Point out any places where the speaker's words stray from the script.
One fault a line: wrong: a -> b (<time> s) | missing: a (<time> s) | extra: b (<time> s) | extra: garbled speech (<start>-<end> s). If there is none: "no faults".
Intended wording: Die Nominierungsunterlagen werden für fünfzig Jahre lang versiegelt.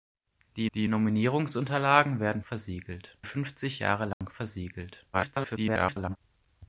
extra: die (0.7 s)
wrong: für -> versiegelt (2.4 s)
extra: garbled speech (5.1-6.2 s)